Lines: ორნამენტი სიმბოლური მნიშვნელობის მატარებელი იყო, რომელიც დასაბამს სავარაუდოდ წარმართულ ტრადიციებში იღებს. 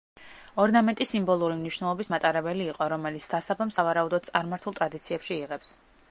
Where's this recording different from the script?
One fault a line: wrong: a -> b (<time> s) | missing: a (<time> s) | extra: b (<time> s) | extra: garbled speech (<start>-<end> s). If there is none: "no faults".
no faults